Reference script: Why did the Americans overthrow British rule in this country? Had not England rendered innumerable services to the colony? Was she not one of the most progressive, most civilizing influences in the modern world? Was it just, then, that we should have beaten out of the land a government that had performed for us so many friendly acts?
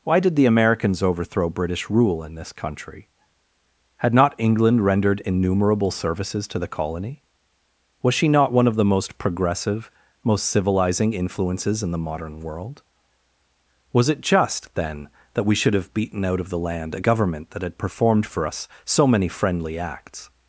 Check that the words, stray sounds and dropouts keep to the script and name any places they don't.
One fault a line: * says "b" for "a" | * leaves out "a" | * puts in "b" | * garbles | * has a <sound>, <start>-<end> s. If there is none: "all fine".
all fine